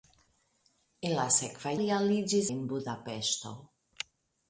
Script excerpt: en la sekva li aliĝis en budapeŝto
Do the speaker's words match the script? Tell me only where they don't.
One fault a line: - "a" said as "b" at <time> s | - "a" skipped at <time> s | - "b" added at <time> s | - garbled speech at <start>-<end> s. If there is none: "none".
none